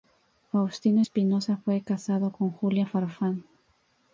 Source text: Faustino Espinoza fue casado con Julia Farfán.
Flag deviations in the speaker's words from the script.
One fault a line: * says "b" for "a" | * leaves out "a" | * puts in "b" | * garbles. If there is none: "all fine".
all fine